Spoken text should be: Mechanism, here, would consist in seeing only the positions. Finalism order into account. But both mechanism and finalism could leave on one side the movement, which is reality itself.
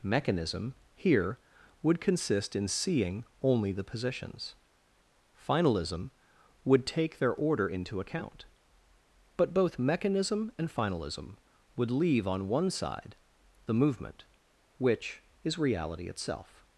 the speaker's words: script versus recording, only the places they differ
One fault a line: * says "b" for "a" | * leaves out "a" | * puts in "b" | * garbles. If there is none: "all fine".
* puts in "would take their"
* says "would" for "could"